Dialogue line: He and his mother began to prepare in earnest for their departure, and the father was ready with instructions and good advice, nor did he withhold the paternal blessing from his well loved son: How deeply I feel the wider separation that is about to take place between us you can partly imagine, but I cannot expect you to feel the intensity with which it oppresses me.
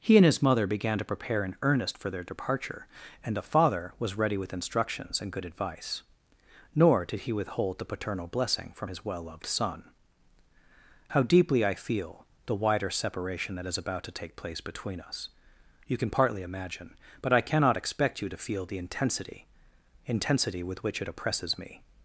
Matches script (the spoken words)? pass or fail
fail